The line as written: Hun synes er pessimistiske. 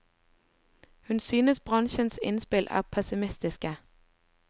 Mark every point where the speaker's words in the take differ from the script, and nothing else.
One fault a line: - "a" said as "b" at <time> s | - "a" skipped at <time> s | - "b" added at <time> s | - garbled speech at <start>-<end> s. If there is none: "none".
- "bransjens innspill" added at 1.6 s